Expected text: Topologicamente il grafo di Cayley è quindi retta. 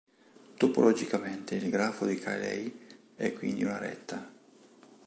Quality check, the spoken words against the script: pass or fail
fail